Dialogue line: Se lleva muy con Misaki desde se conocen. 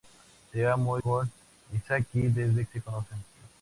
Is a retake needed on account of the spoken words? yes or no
no